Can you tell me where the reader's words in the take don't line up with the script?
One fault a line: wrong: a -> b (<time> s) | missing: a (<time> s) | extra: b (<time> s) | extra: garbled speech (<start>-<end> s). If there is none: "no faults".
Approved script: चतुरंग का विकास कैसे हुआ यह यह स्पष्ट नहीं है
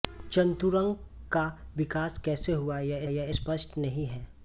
no faults